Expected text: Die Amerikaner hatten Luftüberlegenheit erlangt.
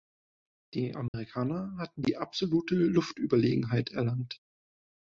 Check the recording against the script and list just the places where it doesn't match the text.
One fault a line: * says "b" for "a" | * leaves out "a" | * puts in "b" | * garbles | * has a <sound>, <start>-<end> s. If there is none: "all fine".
* has a dropout, 1.1-1.1 s
* puts in "die absolute"